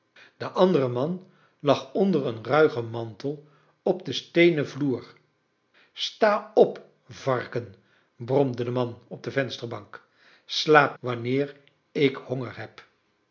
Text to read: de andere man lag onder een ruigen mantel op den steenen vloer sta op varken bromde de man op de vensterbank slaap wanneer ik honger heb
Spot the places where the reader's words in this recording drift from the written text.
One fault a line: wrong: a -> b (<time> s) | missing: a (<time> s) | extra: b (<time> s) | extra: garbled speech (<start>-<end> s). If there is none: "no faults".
no faults